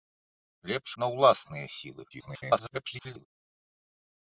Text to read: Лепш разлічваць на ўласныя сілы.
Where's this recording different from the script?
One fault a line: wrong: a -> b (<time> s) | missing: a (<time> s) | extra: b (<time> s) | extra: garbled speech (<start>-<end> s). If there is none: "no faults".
missing: разлічваць (0.9 s)
extra: garbled speech (2.1-3.3 s)